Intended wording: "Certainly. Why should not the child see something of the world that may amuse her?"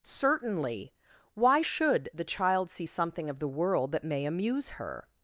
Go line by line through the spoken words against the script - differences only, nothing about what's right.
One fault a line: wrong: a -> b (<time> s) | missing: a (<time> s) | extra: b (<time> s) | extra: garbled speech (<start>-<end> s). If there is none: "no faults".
missing: not (2.1 s)